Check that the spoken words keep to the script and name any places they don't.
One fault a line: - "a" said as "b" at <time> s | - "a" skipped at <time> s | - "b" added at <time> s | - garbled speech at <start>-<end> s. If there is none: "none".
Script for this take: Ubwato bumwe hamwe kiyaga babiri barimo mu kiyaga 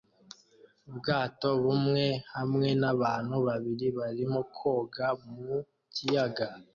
- "kiyaga" said as "n'abantu" at 2.8 s
- "koga" added at 4.6 s